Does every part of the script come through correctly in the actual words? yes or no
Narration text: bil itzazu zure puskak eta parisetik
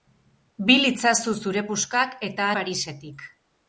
yes